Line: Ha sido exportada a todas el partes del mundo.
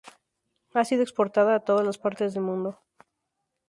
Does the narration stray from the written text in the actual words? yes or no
yes